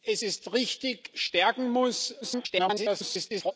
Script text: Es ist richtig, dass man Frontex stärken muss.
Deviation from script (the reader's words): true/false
true